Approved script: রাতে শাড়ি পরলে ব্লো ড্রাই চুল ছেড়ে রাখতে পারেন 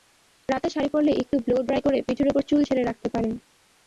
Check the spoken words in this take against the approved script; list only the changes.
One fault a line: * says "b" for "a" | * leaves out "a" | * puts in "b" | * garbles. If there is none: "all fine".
* puts in "একটু"
* puts in "করে পিঠের ওপর"